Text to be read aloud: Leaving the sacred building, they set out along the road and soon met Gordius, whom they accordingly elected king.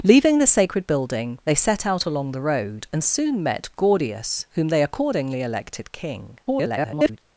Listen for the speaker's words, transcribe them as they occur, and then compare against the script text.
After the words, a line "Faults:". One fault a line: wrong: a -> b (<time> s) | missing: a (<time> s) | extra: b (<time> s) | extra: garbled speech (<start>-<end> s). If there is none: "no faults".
Leaving the sacred building, they set out along the road and soon met Gordius, whom they accordingly elected king. [garbled]
Faults:
extra: garbled speech (6.5-7.2 s)